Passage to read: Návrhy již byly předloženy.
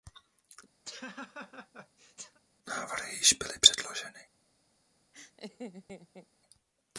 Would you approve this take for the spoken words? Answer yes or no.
yes